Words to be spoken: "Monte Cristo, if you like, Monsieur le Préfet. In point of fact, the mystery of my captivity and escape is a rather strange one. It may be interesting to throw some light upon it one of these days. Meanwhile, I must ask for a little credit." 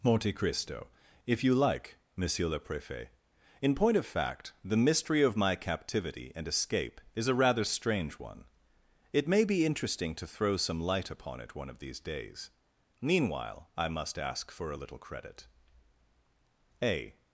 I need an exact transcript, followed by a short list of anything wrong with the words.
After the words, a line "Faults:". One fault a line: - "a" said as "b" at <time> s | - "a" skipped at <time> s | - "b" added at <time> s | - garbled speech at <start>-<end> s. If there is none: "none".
"Monte Cristo, if you like, Monsieur le Préfet. In point of fact, the mystery of my captivity and escape is a rather strange one. It may be interesting to throw some light upon it one of these days. Meanwhile, I must ask for a little credit." A
Faults:
- "A" added at 16.8 s